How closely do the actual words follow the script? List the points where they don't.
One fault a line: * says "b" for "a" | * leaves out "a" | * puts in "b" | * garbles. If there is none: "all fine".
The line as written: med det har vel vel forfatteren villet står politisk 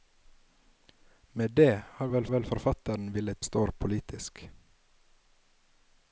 all fine